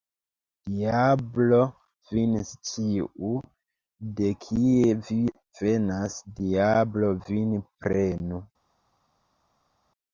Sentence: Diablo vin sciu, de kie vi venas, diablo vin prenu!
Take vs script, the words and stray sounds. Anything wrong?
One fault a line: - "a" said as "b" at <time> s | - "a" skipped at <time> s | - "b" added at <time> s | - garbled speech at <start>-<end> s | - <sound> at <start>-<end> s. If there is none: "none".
none